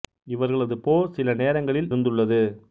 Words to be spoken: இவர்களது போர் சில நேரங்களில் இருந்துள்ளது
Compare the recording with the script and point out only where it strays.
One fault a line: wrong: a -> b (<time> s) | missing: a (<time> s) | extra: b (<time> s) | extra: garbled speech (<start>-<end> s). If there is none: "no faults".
no faults